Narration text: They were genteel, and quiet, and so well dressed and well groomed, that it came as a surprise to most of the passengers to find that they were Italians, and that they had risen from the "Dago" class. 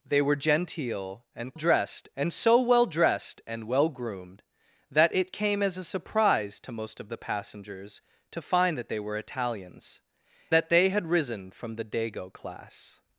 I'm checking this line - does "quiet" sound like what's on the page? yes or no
no